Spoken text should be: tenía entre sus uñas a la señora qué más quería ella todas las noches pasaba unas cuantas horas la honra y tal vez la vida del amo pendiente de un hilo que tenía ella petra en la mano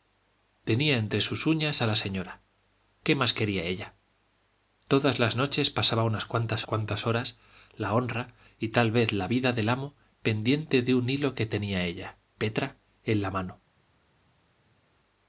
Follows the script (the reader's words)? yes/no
no